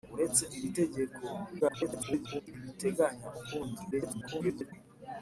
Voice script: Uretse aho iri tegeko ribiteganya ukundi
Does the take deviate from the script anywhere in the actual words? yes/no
yes